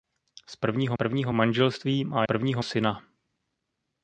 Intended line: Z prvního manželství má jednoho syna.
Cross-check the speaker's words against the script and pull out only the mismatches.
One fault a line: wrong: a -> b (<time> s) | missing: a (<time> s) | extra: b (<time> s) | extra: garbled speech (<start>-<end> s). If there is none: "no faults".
extra: prvního (0.9 s)
wrong: jednoho -> prvního (2.2 s)